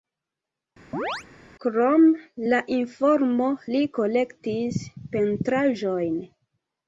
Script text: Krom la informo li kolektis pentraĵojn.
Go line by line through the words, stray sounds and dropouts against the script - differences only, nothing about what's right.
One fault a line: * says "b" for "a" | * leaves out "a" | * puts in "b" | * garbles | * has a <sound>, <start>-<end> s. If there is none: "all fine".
* has a chirp, 0.9-1.2 s